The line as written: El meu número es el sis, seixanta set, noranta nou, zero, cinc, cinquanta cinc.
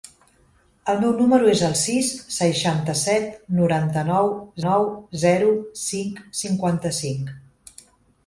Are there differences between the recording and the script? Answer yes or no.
yes